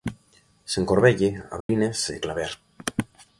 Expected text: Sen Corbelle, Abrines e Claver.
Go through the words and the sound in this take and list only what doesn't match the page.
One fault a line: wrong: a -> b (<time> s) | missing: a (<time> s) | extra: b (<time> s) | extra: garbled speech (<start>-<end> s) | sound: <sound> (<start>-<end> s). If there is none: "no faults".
sound: dropout (1.6-1.7 s)